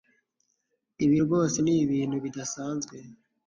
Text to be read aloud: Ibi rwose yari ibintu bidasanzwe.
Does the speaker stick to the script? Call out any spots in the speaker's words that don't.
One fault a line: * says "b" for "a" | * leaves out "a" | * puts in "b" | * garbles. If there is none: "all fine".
* says "ni" for "yari"